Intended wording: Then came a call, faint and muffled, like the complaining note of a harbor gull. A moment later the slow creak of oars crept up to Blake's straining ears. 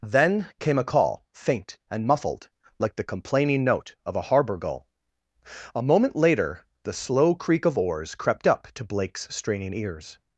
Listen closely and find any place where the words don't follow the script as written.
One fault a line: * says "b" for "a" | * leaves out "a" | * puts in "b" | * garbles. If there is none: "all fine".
all fine